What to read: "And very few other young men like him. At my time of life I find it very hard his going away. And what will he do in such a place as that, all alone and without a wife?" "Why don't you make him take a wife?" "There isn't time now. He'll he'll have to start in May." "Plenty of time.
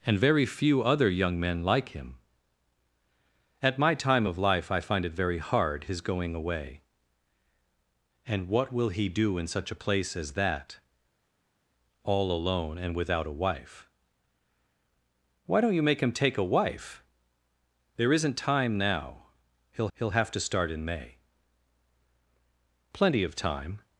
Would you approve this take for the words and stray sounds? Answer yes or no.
yes